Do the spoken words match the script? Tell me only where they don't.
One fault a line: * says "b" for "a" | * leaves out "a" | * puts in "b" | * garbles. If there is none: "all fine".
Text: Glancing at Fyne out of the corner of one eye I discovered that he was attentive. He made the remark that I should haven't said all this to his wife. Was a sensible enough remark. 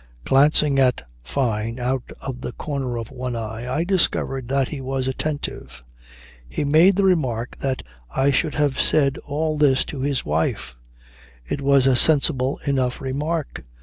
* says "have" for "haven't"
* puts in "It"